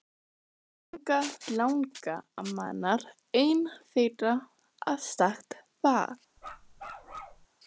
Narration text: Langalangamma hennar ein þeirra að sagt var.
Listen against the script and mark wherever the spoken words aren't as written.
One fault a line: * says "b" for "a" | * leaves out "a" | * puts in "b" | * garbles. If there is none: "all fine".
all fine